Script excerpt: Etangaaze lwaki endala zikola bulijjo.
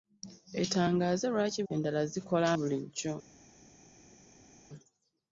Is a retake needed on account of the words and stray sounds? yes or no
no